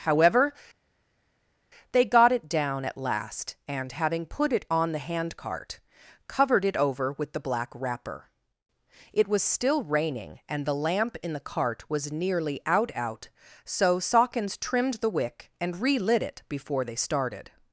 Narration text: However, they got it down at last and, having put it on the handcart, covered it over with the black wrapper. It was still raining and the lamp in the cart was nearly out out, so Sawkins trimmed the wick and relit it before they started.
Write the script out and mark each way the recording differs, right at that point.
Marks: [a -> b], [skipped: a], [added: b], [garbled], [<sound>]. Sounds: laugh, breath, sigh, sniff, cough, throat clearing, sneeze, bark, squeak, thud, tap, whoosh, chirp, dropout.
However, they got it down at last and, having put it on the handcart, covered it over with the black wrapper. It was still raining and the lamp in the cart was nearly out out, so Sawkins trimmed the wick and relit it before they started.